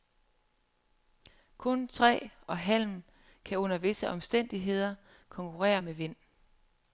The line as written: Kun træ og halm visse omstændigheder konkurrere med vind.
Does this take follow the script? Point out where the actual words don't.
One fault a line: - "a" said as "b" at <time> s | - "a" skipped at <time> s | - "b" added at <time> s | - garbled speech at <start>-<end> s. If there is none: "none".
- "kan under" added at 3.5 s